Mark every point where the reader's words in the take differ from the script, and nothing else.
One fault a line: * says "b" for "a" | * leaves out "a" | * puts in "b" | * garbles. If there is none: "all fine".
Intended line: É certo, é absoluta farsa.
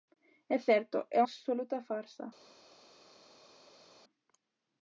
all fine